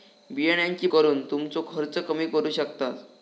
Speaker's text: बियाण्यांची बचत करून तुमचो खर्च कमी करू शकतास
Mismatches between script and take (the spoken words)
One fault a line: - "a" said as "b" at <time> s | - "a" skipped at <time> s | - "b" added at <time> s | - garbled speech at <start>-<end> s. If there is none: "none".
- "बचत" skipped at 0.9 s